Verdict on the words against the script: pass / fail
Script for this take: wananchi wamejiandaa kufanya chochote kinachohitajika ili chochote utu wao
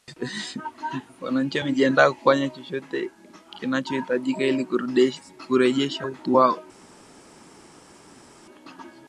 fail